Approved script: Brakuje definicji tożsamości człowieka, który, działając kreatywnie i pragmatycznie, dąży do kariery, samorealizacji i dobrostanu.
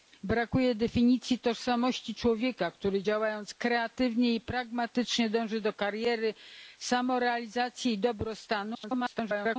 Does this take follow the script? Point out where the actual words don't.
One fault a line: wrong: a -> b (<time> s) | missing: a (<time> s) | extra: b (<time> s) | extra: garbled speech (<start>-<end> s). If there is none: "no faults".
extra: garbled speech (8.7-9.6 s)